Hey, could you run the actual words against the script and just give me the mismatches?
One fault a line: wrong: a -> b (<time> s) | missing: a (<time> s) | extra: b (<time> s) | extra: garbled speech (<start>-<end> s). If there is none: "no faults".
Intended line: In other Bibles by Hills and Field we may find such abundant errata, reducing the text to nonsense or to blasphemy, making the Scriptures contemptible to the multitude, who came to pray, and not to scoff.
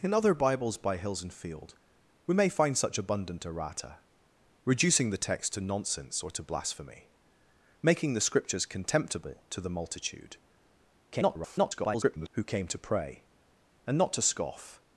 extra: garbled speech (11.1-12.3 s)